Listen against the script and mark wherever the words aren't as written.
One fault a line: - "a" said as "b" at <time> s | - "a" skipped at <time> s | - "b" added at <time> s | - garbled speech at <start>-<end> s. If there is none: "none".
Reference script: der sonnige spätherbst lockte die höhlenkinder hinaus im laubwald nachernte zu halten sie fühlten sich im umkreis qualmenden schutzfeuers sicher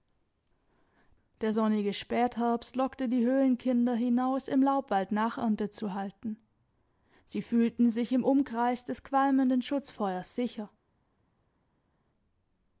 - "des" added at 8.8 s